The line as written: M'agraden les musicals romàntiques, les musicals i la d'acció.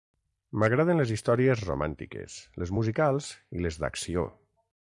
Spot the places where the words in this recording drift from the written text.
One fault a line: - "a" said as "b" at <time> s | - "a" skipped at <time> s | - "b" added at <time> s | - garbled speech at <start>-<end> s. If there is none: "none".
- "musicals" said as "històries" at 1.1 s
- "la" said as "les" at 3.7 s